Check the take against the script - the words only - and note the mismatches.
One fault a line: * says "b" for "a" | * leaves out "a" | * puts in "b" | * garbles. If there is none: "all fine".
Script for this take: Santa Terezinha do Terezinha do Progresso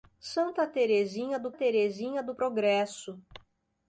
all fine